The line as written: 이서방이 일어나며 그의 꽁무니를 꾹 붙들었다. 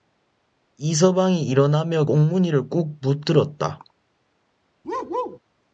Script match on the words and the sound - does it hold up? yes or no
no